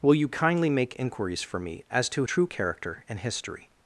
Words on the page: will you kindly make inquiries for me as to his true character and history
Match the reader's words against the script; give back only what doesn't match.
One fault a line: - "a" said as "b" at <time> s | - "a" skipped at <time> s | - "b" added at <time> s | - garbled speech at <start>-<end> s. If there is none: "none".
- "his" skipped at 2.2 s